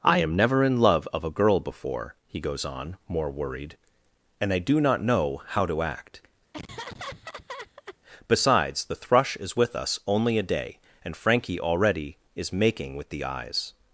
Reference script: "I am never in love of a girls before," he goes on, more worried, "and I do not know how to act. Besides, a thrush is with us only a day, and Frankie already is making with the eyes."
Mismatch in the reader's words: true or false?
true